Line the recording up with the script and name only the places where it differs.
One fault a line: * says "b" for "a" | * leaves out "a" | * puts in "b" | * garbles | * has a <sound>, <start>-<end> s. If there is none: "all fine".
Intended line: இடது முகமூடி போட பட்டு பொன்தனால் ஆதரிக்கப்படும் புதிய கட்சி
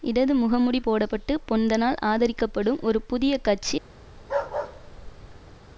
* puts in "ஒரு"
* has a bark, 4.2-5.6 s